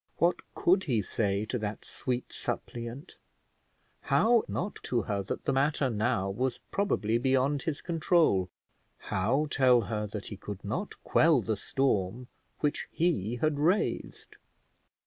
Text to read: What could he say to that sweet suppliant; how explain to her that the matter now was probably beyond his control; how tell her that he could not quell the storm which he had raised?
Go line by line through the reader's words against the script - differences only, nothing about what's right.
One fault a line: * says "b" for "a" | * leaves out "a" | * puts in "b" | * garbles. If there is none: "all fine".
* says "not" for "explain"